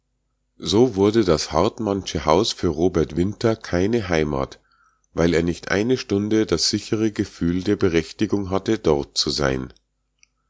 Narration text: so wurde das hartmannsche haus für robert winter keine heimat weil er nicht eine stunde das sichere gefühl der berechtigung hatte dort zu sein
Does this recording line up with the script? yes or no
yes